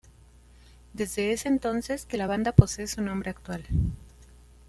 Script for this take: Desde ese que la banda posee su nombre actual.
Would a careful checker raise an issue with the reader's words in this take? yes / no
yes